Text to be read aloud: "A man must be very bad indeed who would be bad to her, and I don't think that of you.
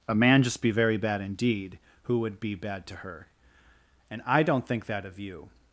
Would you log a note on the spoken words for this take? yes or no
yes